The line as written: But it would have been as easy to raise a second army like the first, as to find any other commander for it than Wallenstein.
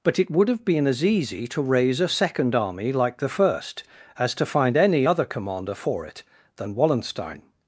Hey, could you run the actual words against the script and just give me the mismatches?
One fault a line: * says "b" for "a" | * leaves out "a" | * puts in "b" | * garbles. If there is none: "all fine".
all fine